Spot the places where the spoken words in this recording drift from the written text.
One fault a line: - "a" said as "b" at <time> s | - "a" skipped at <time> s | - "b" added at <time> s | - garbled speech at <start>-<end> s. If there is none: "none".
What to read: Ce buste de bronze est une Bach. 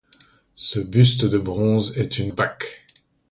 none